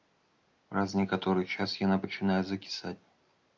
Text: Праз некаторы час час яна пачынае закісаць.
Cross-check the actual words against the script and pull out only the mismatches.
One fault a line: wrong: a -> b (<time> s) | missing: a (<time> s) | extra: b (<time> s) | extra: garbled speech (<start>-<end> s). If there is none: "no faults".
missing: час (1.8 s)